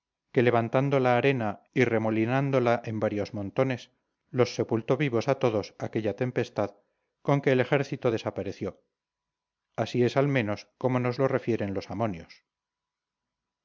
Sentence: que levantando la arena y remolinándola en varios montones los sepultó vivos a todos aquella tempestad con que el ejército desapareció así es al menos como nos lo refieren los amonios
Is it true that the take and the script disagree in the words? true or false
false